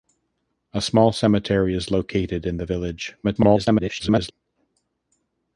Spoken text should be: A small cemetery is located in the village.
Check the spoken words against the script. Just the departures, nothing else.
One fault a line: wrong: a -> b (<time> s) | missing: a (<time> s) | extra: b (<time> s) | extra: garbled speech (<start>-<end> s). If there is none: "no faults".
extra: garbled speech (3.2-4.3 s)